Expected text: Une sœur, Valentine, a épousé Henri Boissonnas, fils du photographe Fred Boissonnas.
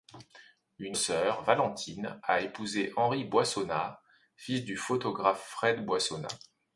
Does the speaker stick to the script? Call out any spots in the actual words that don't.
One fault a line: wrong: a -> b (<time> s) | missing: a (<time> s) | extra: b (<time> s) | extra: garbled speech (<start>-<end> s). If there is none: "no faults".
no faults